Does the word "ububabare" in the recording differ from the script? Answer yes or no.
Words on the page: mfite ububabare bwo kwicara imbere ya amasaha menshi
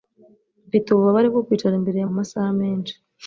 no